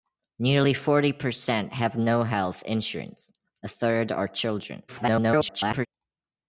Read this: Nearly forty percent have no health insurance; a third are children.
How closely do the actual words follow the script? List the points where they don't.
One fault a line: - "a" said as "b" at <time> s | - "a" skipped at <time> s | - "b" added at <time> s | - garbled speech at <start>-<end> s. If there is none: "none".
- garbled speech at 4.9-5.9 s